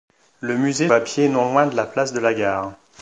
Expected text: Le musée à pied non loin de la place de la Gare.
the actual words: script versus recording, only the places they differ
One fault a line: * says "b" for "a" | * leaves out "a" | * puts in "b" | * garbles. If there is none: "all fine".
all fine